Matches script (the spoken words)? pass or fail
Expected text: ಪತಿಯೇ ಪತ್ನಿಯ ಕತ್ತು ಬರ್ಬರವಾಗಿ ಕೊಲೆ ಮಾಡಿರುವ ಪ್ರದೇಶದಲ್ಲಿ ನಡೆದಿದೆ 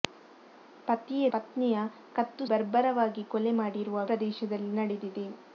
pass